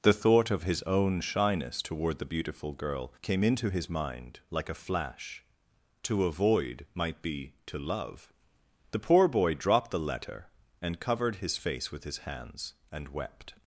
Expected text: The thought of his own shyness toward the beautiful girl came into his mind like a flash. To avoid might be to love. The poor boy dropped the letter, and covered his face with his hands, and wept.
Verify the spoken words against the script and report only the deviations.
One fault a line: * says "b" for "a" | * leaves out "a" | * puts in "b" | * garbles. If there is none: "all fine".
all fine